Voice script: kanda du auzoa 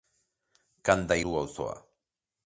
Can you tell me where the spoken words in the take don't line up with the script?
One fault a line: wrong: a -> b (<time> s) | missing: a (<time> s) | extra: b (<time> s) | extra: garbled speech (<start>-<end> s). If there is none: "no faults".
no faults